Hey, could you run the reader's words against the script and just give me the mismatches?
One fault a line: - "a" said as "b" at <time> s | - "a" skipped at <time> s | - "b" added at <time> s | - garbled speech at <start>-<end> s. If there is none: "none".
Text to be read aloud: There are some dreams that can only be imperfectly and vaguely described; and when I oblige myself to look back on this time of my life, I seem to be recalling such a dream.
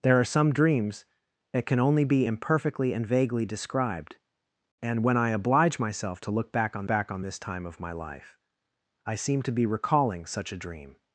- "back on" added at 6.9 s